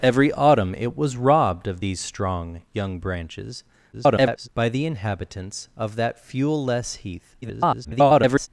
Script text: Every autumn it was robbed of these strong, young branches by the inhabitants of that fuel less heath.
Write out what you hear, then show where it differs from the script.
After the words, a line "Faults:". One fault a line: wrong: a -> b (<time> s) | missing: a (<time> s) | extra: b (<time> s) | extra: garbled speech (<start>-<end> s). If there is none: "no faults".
Every autumn it was robbed of these strong, young branches [garbled] by the inhabitants of that fuel less heath. [garbled]
Faults:
extra: garbled speech (3.9-4.5 s)
extra: garbled speech (7.4-8.5 s)